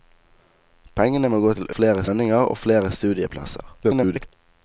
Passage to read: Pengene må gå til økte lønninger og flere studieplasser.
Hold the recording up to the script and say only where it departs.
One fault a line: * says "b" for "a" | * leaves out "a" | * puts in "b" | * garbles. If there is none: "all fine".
* says "flere" for "økte"
* garbles